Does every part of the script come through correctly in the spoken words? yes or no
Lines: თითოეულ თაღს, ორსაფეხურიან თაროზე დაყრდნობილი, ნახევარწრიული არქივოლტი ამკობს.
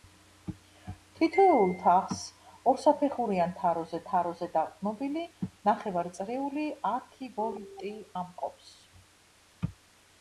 no